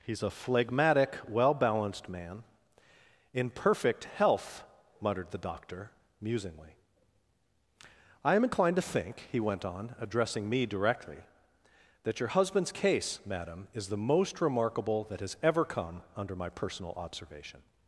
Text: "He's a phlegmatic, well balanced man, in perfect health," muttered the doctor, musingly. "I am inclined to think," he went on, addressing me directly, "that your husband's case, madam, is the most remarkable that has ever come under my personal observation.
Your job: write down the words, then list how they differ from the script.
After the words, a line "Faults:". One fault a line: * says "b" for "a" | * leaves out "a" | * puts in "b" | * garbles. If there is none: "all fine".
"He's a phlegmatic, well balanced man, in perfect health," muttered the doctor, musingly. "I am inclined to think," he went on, addressing me directly, "that your husband's case, madam, is the most remarkable that has ever come under my personal observation.
Faults:
all fine